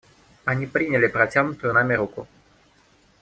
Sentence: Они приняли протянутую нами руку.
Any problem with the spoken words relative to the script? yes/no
no